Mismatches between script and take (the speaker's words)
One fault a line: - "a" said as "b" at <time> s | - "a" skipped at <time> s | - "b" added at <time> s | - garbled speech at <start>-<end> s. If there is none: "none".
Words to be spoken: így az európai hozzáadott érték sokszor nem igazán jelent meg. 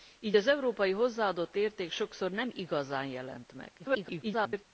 - garbled speech at 3.8-4.6 s